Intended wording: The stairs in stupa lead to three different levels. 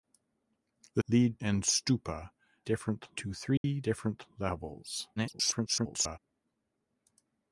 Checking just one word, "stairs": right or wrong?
wrong